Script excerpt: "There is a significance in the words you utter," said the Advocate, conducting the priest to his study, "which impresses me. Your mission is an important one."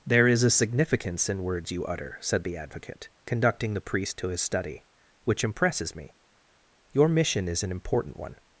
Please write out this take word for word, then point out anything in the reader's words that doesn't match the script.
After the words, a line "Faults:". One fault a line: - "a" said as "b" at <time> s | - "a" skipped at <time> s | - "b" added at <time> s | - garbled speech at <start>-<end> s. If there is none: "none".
"There is a significance in words you utter," said the Advocate, conducting the priest to his study, "which impresses me. Your mission is an important one."
Faults:
- "the" skipped at 1.4 s